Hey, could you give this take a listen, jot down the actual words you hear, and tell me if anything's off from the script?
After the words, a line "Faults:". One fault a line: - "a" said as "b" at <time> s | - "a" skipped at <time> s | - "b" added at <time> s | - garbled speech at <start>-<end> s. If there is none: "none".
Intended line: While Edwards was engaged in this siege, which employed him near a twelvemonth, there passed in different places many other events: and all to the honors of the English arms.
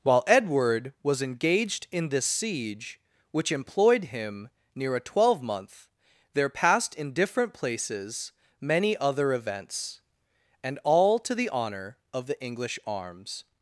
While Edward was engaged in this siege, which employed him near a twelvemonth, there passed in different places many other events: and all to the honor of the English arms.
Faults:
- "Edwards" said as "Edward" at 0.2 s
- "honors" said as "honor" at 11.5 s